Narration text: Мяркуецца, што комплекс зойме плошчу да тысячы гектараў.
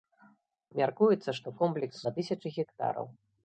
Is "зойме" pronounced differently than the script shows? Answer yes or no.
yes